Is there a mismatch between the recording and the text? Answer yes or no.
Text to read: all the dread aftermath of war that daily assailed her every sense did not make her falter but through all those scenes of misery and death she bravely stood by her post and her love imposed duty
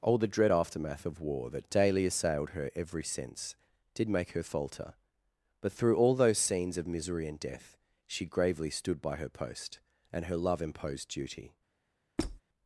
yes